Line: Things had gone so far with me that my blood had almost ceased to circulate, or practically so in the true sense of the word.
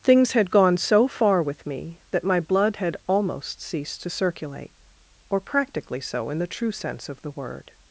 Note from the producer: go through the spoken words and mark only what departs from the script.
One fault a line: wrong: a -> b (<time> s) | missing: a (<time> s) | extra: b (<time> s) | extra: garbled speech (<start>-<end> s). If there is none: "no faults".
no faults